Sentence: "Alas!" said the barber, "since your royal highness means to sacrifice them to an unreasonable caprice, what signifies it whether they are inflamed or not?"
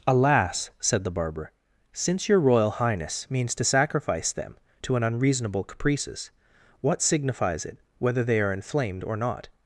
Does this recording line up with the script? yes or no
no